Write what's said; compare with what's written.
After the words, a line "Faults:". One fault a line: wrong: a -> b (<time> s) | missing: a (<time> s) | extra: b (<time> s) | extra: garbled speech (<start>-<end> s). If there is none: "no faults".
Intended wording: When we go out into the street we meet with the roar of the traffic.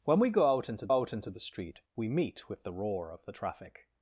When we go out into out into the street we meet with the roar of the traffic.
Faults:
extra: out into (0.9 s)